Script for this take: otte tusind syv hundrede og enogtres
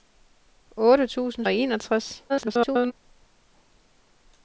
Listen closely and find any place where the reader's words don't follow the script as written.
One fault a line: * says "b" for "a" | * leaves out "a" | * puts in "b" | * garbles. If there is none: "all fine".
* leaves out "syv hundrede"
* garbles